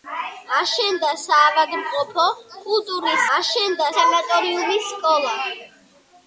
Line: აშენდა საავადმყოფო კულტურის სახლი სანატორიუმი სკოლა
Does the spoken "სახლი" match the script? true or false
false